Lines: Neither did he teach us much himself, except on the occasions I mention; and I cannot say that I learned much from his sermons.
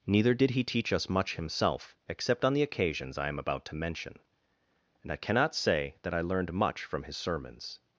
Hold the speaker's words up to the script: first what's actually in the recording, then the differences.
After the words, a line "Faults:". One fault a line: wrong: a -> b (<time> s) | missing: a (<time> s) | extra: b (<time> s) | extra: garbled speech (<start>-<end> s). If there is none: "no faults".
Neither did he teach us much himself, except on the occasions I am about to mention; and I cannot say that I learned much from his sermons.
Faults:
extra: am about to (3.3 s)